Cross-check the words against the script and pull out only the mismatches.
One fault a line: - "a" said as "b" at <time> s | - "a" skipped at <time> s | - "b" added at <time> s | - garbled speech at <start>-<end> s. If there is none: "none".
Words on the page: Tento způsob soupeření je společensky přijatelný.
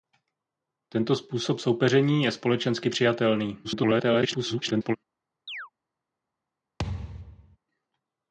- garbled speech at 3.6-5.0 s